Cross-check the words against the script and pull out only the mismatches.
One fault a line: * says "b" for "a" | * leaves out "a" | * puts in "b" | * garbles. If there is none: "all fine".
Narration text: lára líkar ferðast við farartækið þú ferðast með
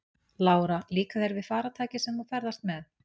* says "þér" for "ferðast"
* puts in "sem"